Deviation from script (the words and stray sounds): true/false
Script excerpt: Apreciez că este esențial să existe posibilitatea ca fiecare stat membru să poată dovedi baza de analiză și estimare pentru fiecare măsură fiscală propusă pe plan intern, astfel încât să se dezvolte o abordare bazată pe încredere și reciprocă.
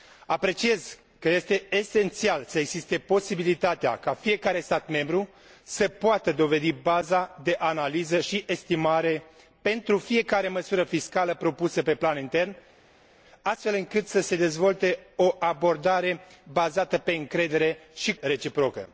false